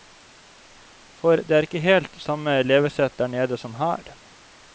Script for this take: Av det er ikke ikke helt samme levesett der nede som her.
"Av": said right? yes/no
no